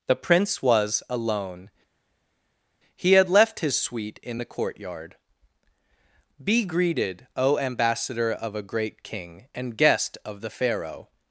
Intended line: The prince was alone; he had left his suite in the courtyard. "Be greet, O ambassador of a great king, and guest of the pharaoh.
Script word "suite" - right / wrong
right